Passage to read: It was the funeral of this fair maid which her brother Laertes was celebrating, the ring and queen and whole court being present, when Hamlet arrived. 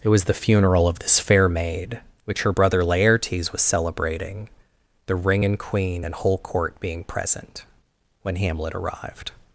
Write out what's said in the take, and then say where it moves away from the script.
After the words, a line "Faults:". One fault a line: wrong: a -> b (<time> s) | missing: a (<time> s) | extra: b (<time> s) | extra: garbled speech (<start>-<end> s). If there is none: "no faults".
It was the funeral of this fair maid which her brother Laertes was celebrating, the ring and queen and whole court being present, when Hamlet arrived.
Faults:
no faults